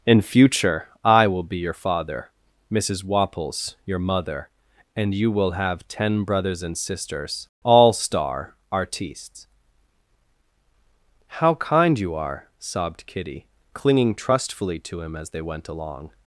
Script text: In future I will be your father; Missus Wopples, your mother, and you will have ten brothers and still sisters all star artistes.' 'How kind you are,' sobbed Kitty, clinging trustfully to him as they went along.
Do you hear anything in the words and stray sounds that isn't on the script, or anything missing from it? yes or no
yes